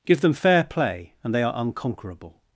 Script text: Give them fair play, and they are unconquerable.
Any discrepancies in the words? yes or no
no